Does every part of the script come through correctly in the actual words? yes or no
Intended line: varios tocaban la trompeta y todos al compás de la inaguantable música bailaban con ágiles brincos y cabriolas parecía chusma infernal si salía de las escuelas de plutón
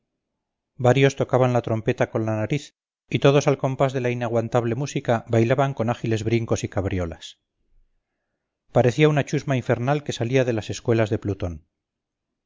no